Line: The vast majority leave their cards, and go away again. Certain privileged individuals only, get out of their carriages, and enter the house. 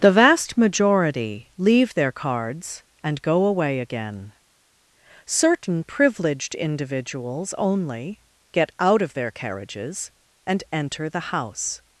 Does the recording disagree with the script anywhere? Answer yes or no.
no